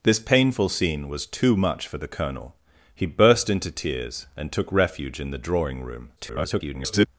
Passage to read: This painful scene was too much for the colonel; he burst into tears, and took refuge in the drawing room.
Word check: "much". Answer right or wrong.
right